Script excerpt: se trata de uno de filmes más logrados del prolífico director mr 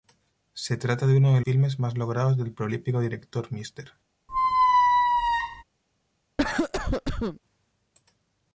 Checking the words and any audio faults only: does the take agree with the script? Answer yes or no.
no